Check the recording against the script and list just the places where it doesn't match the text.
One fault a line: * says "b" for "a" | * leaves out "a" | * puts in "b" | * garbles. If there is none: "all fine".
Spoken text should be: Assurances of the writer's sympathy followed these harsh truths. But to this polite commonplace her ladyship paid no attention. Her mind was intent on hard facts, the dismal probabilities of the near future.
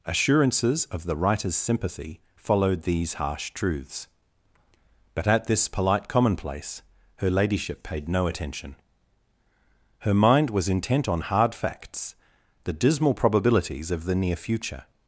* says "at" for "to"